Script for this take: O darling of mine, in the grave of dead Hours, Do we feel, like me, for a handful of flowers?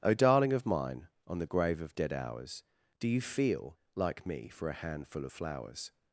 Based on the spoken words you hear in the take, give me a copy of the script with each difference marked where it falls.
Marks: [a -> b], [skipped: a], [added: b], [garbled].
O darling of mine, [in -> on] the grave of dead Hours, Do [we -> you] feel, like me, for a handful of flowers?